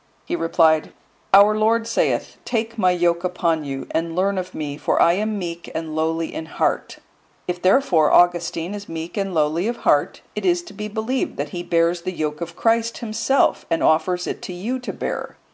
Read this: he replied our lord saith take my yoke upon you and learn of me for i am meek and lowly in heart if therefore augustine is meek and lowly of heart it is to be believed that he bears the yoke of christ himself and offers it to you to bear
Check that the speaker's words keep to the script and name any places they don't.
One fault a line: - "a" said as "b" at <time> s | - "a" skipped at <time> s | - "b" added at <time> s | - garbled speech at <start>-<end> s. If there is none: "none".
none